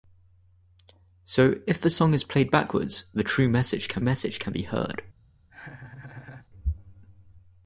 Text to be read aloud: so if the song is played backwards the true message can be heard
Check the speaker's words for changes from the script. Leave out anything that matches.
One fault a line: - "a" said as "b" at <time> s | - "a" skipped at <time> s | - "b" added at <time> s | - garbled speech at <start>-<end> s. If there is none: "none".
- "message can" added at 4.0 s